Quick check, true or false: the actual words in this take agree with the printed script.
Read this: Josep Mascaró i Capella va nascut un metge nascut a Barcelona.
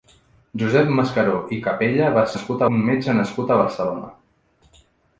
true